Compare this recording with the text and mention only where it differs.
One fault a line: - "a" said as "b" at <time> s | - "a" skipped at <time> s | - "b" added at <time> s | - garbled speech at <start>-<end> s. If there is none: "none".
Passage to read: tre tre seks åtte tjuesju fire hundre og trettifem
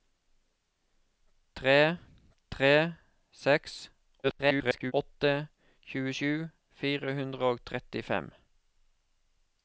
- garbled speech at 4.2-4.9 s